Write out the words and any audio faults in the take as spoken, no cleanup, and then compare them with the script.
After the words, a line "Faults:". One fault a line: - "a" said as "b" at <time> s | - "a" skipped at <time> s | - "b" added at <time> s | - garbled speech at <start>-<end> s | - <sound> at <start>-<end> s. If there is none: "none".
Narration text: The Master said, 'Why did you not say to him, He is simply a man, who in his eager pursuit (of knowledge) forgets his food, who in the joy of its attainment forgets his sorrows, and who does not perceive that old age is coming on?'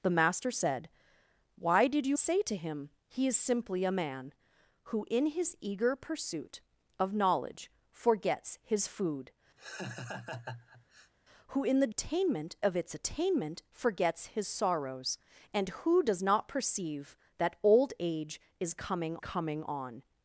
The Master said, 'Why did you say to him, He is simply a man, who in his eager pursuit (of knowledge) forgets his food, who in the attainment of its attainment forgets his sorrows, and who does not perceive that old age is coming coming on?'
Faults:
- "not" skipped at 2.2 s
- laugh at 9.6-11.1 s
- "joy" said as "attainment" at 11.9 s
- "coming" added at 19.2 s